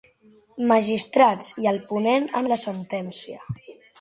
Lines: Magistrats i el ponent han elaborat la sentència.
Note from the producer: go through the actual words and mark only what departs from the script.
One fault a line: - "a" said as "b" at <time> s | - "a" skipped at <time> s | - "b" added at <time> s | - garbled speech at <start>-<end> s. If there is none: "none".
- "elaborat" skipped at 2.5 s